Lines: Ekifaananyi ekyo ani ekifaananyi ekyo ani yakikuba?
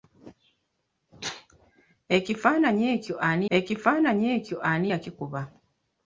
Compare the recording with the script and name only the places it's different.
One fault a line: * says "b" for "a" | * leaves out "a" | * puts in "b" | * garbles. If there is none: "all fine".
all fine